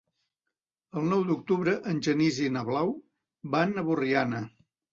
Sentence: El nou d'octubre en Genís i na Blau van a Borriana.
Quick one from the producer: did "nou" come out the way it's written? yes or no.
yes